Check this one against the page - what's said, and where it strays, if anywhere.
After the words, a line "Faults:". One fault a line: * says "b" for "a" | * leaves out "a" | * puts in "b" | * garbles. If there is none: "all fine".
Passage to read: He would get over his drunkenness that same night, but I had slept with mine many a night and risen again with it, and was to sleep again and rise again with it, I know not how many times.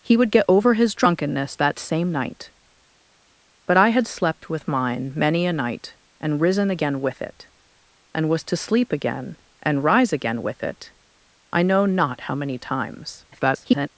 He would get over his drunkenness that same night, but I had slept with mine many a night and risen again with it, and was to sleep again and rise again with it, I know not how many times. [garbled]
Faults:
* garbles